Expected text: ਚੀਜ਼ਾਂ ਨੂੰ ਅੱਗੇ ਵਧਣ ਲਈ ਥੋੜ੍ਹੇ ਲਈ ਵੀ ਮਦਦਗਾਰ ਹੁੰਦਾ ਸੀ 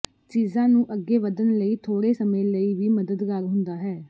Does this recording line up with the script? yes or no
no